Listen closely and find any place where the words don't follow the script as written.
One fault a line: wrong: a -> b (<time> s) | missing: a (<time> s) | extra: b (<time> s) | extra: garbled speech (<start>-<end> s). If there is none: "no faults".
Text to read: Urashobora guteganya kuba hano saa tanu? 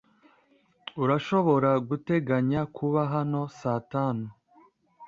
no faults